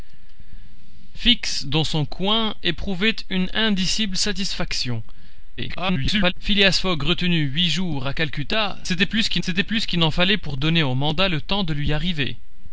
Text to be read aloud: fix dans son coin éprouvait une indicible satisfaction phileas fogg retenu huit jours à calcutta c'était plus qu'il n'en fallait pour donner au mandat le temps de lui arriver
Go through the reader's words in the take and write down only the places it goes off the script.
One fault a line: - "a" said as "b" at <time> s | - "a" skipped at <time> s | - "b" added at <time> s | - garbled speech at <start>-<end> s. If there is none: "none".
- garbled speech at 5.6-6.3 s
- "c'était plus qu'il" added at 9.4 s